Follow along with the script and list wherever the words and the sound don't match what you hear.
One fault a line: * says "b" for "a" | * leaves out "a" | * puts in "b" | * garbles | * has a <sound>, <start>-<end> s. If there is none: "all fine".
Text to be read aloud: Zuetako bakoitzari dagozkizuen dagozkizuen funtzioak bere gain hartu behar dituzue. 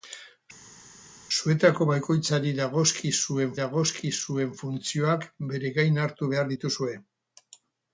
all fine